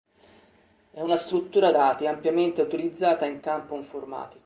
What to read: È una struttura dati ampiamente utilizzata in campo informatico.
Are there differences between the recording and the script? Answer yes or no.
no